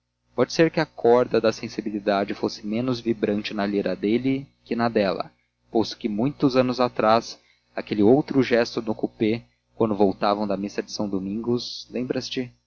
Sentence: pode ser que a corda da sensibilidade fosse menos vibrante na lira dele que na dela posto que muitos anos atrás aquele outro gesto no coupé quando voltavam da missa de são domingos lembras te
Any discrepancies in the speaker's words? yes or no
no